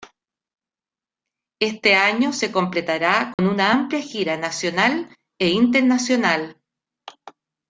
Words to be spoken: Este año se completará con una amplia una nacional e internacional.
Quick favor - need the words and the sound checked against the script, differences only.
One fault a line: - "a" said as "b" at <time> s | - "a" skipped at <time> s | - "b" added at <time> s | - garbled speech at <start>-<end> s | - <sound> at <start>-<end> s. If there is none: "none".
- dropout at 3.3-3.4 s
- "una" said as "gira" at 4.0 s